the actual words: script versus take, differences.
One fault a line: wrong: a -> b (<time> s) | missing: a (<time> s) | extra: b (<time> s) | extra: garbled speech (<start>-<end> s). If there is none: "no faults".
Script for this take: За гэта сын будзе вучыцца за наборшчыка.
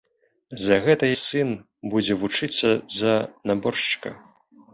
no faults